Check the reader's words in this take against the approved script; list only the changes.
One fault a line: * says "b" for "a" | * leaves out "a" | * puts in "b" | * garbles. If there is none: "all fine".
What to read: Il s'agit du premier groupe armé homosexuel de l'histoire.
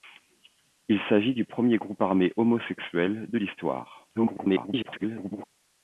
* garbles